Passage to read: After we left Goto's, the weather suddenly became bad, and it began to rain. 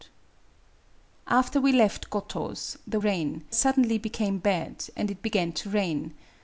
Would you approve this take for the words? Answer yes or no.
no